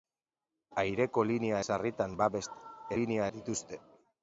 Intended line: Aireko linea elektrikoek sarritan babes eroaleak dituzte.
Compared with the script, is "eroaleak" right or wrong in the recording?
wrong